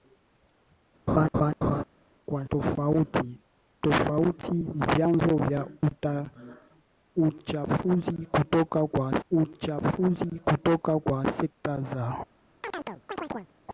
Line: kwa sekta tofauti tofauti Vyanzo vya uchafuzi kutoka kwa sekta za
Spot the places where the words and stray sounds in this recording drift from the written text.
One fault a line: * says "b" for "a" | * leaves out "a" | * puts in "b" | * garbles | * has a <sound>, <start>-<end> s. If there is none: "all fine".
* has a laugh, 1.1-1.8 s
* leaves out "sekta"
* puts in "uchafuzi kutoka kwa"
* has a chirp, 12.6-13.5 s